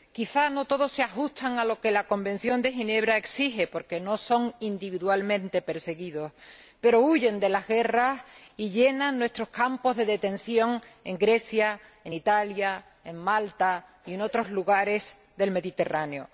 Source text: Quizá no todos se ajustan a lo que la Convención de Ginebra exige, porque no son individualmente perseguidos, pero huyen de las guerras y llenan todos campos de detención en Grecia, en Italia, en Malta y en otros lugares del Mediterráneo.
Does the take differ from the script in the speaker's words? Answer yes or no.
yes